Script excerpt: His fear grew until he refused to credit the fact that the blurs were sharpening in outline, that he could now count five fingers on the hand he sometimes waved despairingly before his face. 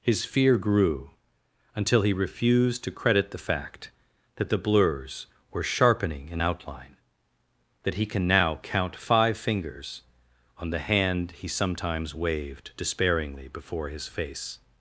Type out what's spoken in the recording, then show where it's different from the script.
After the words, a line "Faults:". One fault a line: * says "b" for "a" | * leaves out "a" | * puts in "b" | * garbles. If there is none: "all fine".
His fear grew until he refused to credit the fact that the blurs were sharpening in outline, that he can now count five fingers on the hand he sometimes waved despairingly before his face.
Faults:
* says "can" for "could"